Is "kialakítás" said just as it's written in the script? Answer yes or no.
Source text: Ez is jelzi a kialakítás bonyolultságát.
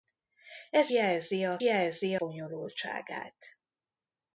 no